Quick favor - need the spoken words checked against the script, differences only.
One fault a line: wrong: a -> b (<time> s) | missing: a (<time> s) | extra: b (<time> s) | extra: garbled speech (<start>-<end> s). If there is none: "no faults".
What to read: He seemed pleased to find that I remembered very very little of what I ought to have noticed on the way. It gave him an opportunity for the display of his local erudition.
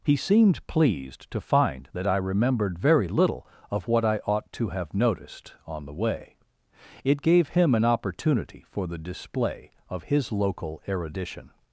missing: very (3.1 s)